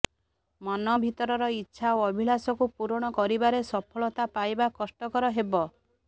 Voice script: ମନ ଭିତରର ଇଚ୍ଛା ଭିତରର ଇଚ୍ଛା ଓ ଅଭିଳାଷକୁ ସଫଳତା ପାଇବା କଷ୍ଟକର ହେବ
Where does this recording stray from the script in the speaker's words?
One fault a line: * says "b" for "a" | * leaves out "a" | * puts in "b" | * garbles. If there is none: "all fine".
* says "ଓ ଅଭିଳାଷକୁ ପୂରଣ କରିବାରେ" for "ଭିତରର ଇଚ୍ଛା ଓ ଅଭିଳାଷକୁ"